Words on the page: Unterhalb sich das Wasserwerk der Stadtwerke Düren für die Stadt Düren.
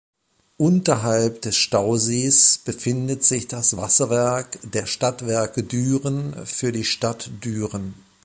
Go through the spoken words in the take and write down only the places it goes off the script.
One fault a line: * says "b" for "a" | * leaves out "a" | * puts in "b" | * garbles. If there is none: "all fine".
* puts in "des Stausees befindet"